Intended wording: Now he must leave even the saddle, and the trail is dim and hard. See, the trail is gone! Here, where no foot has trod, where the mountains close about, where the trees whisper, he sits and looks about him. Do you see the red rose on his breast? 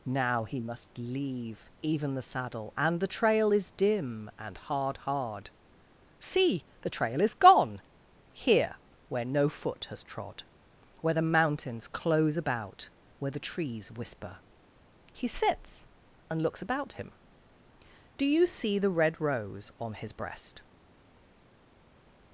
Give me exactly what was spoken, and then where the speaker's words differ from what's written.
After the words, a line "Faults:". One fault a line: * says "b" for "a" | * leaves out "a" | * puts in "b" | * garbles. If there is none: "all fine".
Now he must leave even the saddle, and the trail is dim and hard hard. See, the trail is gone! Here, where no foot has trod, where the mountains close about, where the trees whisper, he sits and looks about him. Do you see the red rose on his breast?
Faults:
* puts in "hard"